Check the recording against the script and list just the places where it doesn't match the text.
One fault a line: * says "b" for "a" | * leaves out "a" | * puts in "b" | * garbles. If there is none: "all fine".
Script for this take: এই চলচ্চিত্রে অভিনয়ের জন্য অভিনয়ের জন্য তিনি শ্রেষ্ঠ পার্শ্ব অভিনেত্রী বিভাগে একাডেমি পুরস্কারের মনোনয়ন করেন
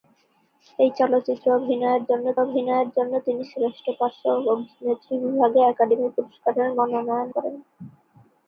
all fine